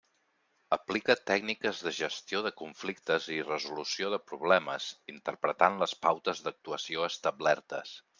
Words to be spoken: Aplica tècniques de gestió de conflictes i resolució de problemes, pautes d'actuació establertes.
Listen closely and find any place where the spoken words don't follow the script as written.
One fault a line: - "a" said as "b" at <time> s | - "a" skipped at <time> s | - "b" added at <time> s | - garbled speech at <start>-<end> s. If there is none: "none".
- "interpretant les" added at 5.1 s